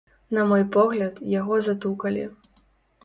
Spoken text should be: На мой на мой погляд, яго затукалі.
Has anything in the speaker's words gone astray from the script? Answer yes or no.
yes